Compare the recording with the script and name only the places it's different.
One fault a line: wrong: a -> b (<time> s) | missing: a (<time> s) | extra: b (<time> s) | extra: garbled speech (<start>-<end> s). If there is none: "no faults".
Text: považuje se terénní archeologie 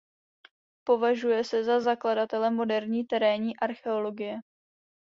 extra: za zakladatele moderní (1.6 s)